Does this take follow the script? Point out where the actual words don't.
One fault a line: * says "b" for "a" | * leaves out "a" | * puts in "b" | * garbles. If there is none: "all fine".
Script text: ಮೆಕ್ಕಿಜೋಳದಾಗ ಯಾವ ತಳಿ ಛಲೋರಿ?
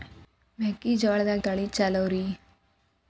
* leaves out "ಯಾವ"